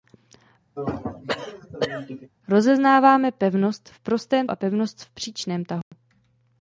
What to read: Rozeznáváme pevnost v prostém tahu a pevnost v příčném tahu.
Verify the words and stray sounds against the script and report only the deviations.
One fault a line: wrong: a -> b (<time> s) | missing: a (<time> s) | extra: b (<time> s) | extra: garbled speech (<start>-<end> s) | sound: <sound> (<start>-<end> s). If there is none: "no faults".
sound: throat clearing (0.8-2.3 s)
missing: tahu (4.5 s)
sound: dropout (5.8-5.9 s)